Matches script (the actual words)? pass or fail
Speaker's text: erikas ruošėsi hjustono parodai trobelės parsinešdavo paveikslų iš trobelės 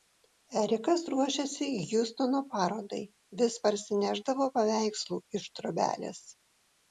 fail